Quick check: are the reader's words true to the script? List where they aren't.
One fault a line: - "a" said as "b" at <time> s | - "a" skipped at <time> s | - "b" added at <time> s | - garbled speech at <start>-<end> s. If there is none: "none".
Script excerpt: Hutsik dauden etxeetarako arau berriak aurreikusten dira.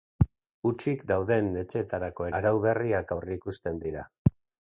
none